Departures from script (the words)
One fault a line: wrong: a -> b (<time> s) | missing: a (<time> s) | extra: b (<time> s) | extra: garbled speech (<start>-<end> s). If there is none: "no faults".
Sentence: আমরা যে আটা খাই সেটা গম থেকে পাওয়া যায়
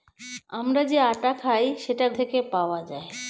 missing: গম (2.1 s)